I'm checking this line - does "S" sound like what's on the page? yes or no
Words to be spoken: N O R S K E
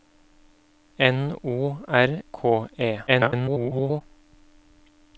no